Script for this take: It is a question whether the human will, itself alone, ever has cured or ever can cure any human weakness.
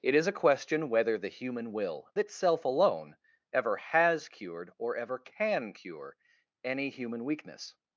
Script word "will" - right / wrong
right